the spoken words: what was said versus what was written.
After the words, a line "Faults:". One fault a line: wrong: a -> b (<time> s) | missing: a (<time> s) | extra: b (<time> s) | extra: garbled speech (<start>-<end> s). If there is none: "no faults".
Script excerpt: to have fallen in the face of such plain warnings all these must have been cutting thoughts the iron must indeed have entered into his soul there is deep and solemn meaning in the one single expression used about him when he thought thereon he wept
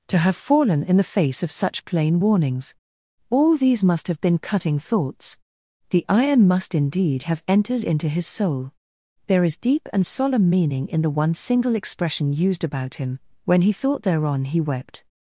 to have fallen in the face of such plain warnings all these must have been cutting thoughts the iron must indeed have entered into his soul there is deep and solemn meaning in the one single expression used about him when he thought thereon he wept
Faults:
no faults